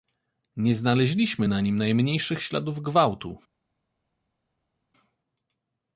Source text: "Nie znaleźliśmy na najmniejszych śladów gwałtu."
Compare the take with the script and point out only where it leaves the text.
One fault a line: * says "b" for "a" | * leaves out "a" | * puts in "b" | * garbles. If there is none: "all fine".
* puts in "nim"